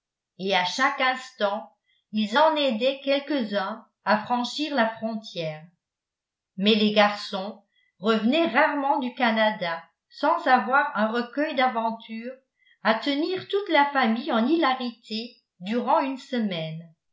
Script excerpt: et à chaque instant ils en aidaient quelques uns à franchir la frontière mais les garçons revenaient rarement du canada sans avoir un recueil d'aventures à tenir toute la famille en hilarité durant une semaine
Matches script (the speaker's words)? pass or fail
pass